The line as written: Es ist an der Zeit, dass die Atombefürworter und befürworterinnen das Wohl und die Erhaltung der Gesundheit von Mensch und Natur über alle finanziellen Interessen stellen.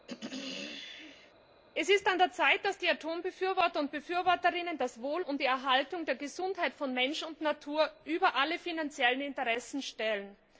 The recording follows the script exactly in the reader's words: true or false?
true